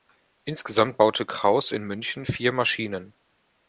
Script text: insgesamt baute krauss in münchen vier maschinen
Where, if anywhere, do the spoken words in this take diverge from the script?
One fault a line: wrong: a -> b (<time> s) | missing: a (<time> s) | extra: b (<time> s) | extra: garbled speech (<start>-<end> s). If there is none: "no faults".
no faults